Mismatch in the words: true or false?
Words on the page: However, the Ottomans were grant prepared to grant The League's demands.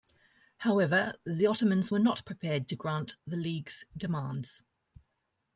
true